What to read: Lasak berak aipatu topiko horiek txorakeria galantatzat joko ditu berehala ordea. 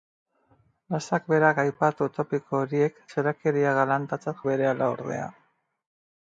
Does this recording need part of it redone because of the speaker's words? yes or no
yes